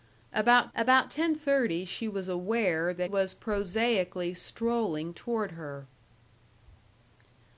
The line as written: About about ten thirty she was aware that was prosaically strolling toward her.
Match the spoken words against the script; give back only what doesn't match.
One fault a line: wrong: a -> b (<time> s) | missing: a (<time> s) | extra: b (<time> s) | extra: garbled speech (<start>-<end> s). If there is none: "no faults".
no faults